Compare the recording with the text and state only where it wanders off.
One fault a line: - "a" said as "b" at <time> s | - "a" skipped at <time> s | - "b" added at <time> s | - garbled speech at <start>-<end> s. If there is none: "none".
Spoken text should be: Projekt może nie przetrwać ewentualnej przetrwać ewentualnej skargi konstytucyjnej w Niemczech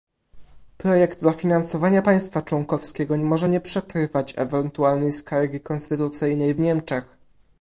- "dofinansowania państwa członkowskiego" added at 1.2 s
- "przetrwać ewentualnej" skipped at 5.1 s